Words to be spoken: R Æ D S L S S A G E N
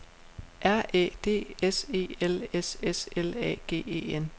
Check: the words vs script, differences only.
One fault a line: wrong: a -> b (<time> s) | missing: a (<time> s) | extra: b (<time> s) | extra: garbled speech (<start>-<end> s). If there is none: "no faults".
extra: E (1.9 s)
extra: L (3.1 s)